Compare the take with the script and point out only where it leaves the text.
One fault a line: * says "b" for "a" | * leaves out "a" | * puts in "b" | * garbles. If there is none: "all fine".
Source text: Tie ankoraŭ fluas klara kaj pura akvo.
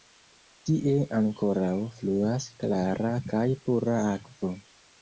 all fine